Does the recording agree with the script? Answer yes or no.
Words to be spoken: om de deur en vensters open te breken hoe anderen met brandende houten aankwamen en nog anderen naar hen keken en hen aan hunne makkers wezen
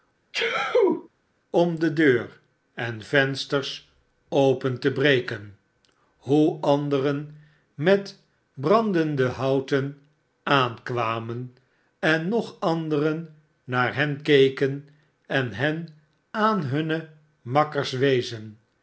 yes